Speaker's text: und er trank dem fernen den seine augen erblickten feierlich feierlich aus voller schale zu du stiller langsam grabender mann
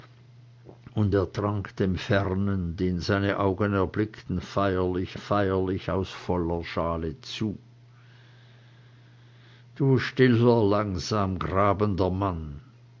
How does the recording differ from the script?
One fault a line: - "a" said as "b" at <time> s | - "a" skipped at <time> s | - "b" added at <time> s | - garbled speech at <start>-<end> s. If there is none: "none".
none